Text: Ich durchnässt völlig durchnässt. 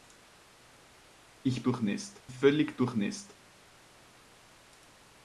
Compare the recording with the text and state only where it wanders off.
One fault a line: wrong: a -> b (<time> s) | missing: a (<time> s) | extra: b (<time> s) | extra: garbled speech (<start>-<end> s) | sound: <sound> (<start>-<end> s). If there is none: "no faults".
no faults